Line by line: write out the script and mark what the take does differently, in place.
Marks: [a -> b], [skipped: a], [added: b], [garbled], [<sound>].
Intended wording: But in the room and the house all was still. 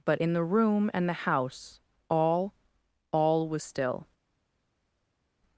But in the room and the house all [added: all] was still.